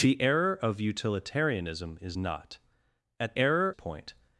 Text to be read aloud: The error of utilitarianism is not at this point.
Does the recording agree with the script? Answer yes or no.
no